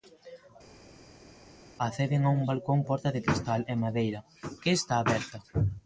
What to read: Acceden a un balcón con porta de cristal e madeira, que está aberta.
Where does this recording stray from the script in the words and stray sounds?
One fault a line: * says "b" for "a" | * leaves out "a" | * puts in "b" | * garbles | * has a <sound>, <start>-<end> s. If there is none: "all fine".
* leaves out "con"